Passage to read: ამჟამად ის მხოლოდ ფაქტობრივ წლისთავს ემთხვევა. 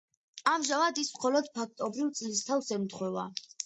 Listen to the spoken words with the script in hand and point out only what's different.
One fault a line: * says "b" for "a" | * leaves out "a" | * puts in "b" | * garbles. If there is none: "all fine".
all fine